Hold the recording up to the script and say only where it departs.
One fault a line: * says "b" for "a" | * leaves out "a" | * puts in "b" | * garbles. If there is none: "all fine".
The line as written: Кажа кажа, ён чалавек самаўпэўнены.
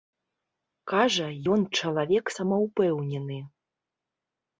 * leaves out "кажа"